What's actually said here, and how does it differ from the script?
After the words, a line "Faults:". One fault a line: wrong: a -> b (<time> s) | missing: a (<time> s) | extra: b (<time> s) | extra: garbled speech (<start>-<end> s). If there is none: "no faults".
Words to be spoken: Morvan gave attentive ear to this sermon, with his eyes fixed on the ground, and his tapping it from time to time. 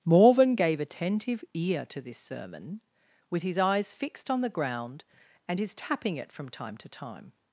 Morvan gave attentive ear to this sermon, with his eyes fixed on the ground, and his tapping it from time to time.
Faults:
no faults